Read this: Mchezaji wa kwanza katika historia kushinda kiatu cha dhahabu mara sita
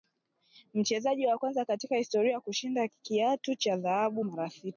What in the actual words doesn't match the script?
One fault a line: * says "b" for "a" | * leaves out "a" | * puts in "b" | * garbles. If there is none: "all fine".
all fine